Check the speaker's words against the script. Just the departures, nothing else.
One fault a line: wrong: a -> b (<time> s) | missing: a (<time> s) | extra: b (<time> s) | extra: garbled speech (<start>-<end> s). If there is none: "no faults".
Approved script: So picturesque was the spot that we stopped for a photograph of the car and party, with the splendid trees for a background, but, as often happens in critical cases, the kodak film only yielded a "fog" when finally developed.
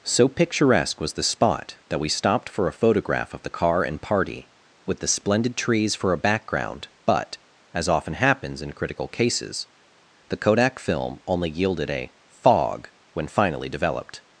no faults